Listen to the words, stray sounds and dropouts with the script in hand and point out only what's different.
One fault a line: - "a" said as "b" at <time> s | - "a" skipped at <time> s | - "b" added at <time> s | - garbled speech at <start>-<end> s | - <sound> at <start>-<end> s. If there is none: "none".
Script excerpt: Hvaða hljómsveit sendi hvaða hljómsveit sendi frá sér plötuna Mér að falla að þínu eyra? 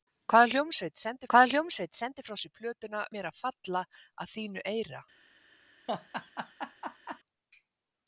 - laugh at 5.9-7.2 s